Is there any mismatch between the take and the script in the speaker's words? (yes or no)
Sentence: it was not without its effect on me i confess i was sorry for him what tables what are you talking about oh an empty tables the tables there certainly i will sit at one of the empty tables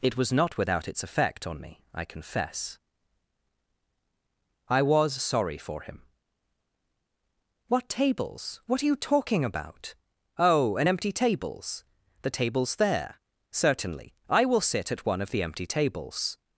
no